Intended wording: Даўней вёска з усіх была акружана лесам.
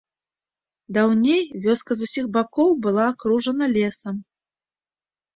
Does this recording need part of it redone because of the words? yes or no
yes